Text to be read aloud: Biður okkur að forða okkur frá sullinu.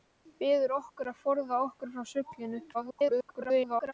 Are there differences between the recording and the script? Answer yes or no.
yes